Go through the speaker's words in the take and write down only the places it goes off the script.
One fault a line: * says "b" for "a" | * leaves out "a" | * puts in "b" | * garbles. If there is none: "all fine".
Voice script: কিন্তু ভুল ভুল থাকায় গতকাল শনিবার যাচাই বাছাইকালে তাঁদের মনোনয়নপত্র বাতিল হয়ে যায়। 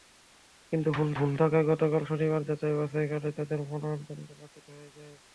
all fine